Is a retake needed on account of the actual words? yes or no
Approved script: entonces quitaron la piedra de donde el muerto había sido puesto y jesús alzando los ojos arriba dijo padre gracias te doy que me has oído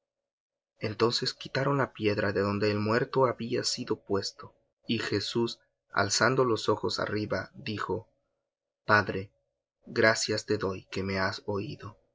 no